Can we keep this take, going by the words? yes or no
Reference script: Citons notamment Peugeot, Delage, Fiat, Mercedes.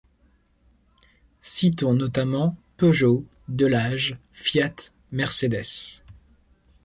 yes